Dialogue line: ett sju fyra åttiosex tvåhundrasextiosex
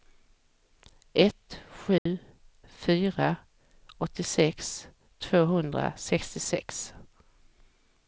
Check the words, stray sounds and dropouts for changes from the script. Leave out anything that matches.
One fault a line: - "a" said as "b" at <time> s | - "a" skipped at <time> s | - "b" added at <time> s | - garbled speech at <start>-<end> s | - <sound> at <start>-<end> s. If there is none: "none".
- dropout at 2.0-2.1 s